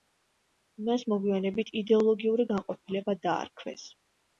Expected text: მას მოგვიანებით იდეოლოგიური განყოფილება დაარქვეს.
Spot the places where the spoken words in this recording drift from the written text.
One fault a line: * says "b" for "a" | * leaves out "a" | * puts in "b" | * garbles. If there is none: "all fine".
all fine